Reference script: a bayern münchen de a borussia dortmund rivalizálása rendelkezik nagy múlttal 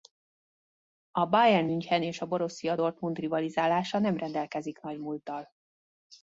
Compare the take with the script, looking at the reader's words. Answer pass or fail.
fail